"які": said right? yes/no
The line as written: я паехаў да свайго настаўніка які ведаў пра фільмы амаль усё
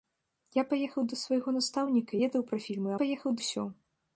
no